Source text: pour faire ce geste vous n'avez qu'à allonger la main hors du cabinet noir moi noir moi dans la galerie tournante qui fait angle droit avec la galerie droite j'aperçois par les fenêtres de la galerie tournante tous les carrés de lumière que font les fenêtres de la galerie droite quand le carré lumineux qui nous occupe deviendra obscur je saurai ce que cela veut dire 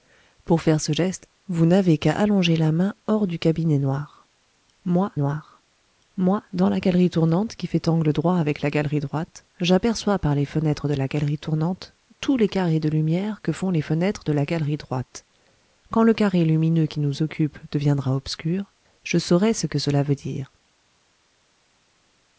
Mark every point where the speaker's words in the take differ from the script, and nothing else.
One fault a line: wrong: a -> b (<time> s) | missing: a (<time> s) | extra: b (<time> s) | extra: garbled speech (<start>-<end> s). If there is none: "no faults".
no faults